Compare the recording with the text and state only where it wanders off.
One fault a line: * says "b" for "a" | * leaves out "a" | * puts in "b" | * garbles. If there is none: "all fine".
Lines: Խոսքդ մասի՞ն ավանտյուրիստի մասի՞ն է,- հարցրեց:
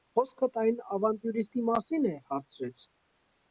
* says "այն" for "մասի՞ն"